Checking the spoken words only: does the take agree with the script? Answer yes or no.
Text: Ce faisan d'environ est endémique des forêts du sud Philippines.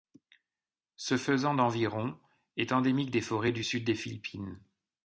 no